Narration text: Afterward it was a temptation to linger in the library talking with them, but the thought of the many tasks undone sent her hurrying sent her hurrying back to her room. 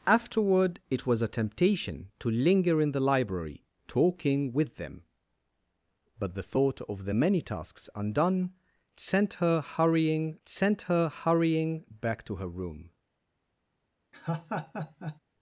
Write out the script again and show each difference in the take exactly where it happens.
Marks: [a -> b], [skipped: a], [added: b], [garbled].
Afterward it was a temptation to linger in the library talking with them, but the thought of the many tasks undone sent her hurrying sent her hurrying back to her room.